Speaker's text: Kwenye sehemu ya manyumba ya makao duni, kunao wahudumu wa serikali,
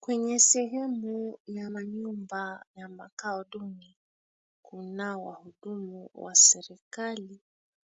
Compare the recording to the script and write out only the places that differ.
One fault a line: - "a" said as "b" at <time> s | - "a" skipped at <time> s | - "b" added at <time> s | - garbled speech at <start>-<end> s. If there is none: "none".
none